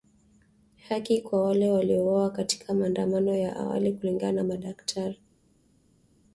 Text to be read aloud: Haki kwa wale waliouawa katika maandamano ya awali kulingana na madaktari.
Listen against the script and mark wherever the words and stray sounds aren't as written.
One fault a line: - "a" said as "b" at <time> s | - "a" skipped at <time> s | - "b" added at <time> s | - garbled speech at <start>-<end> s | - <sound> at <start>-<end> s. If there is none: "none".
none